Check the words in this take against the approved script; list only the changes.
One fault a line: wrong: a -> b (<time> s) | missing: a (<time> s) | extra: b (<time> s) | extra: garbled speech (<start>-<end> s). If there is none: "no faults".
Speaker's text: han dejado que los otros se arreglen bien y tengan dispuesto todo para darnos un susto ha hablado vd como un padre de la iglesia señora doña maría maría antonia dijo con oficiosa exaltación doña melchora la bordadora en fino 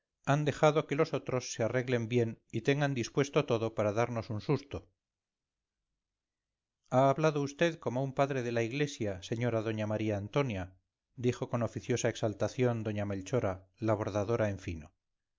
missing: maría (10.2 s)